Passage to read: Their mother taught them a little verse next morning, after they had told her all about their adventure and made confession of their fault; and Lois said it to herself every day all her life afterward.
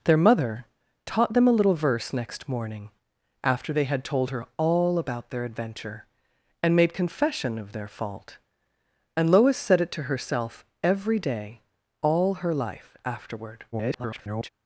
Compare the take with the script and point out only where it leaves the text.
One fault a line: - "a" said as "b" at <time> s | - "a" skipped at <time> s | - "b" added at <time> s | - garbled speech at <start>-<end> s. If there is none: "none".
- garbled speech at 13.7-14.5 s